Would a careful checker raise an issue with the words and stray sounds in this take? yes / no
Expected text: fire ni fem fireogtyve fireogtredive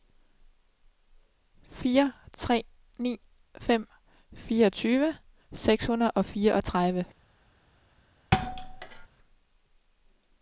yes